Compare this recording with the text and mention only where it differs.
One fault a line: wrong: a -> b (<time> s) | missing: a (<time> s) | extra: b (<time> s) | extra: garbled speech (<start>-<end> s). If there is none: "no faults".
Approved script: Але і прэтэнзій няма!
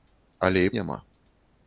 missing: прэтэнзій (0.7 s)